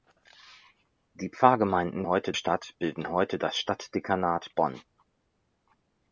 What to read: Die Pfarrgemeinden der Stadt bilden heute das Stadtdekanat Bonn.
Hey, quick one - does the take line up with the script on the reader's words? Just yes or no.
no